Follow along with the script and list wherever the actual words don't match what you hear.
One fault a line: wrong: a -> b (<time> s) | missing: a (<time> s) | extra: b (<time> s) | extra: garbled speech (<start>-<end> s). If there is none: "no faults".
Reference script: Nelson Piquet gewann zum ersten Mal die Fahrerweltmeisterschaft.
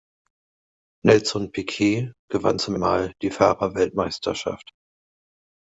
missing: ersten (2.8 s)